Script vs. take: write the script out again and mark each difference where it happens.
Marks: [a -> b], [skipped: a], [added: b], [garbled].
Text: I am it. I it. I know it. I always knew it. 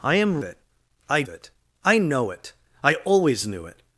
I am it. I it. I know it. I always knew it.